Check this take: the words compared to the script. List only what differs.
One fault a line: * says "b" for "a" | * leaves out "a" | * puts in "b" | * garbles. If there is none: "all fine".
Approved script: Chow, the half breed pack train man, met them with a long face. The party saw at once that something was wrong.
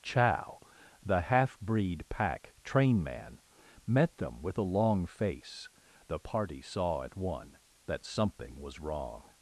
* says "one" for "once"